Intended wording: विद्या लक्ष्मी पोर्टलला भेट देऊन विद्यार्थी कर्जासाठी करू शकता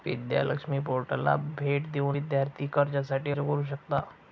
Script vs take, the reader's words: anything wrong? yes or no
no